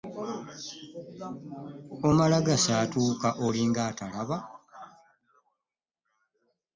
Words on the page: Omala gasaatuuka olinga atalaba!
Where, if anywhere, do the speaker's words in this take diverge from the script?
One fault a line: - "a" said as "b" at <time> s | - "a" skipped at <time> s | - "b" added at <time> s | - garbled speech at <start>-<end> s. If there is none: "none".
none